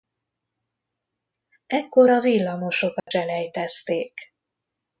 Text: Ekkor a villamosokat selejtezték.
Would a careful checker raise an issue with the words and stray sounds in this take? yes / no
yes